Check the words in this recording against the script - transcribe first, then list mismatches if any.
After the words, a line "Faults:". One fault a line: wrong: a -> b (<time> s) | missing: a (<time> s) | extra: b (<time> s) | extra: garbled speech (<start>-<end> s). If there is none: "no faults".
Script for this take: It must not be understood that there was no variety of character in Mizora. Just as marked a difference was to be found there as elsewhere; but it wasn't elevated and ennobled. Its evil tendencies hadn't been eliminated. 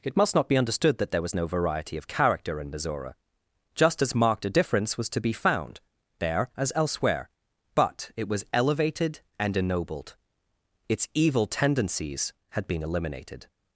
It must not be understood that there was no variety of character in Mizora. Just as marked a difference was to be found there as elsewhere; but it was elevated and ennobled. Its evil tendencies had been eliminated.
Faults:
wrong: wasn't -> was (8.3 s)
wrong: hadn't -> had (12.5 s)